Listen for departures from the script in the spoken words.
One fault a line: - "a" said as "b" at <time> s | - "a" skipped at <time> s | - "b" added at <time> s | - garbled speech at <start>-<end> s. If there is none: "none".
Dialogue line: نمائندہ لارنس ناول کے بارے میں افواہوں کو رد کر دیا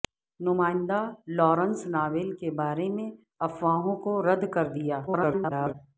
- garbled speech at 5.1-5.7 s